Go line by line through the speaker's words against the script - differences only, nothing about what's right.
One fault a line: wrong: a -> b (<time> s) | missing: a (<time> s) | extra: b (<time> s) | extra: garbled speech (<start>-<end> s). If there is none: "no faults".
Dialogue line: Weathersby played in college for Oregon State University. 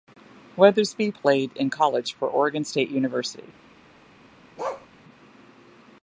no faults